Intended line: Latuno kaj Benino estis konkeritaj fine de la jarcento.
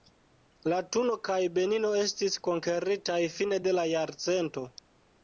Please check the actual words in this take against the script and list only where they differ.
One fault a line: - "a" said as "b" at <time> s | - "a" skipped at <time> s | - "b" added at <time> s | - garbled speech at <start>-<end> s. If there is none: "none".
none